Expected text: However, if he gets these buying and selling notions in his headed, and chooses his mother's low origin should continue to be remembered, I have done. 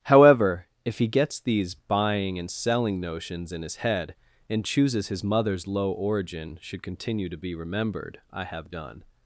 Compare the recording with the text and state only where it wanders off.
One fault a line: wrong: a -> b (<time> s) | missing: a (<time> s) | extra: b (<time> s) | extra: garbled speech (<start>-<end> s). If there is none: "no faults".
wrong: headed -> head (3.8 s)